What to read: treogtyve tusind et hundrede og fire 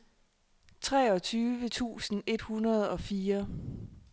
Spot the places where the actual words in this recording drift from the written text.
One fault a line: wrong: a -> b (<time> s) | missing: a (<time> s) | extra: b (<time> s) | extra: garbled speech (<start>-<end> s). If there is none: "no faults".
no faults